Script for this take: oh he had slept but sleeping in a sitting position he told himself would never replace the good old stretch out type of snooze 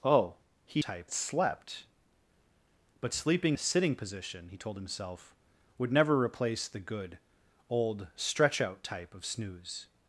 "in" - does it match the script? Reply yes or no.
no